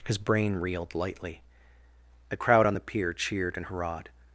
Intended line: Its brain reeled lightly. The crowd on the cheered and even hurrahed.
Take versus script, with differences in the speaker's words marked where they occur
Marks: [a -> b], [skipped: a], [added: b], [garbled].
[Its -> His] brain reeled lightly. The crowd on the [added: pier] cheered and [skipped: even] hurrahed.